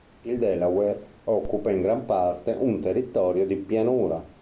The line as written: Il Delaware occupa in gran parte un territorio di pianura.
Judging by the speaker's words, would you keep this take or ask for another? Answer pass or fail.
pass